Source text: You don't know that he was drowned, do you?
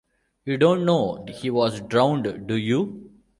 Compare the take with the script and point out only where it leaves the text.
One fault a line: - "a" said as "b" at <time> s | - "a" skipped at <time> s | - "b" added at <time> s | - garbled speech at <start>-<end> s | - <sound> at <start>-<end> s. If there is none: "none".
- "that" skipped at 1.2 s